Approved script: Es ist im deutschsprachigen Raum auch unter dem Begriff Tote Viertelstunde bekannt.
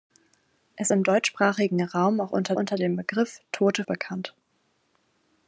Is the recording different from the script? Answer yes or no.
yes